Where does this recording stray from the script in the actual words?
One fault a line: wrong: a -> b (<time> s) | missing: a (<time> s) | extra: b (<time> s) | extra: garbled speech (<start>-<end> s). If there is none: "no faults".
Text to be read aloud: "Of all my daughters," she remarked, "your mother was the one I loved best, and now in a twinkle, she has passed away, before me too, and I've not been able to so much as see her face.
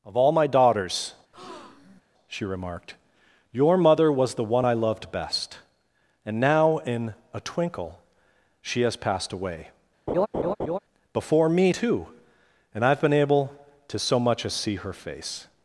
missing: not (13.0 s)